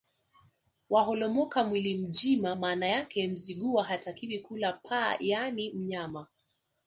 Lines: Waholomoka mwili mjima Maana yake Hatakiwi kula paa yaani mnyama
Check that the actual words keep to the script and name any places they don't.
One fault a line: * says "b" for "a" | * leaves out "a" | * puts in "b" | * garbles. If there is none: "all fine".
* puts in "Mzigua"